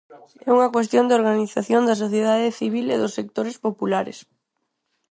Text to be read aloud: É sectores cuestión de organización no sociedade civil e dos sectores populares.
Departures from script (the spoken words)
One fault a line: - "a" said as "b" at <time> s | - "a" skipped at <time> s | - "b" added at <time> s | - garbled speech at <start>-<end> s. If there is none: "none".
- "sectores" said as "unha" at 0.6 s
- "no" said as "da" at 1.9 s